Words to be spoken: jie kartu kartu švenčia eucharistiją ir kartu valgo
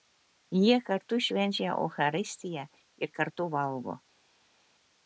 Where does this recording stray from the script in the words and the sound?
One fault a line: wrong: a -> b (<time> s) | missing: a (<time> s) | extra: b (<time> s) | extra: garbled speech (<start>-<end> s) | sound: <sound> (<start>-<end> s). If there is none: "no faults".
missing: kartu (1.2 s)